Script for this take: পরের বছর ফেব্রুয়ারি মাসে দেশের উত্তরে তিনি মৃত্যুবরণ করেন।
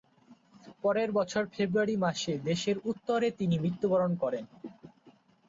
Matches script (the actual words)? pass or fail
pass